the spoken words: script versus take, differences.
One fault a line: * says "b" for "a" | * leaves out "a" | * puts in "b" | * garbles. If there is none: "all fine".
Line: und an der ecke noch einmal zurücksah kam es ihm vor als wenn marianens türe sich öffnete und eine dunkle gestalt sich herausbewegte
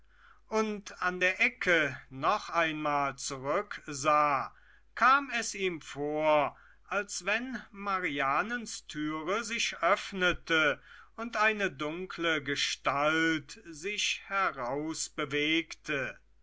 all fine